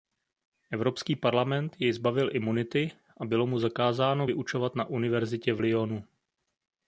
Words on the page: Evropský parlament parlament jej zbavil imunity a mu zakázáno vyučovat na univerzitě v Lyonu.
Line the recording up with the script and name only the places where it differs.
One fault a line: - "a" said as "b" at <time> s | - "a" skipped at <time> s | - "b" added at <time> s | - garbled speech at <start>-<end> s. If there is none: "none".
- "parlament" skipped at 1.8 s
- "bylo" added at 3.2 s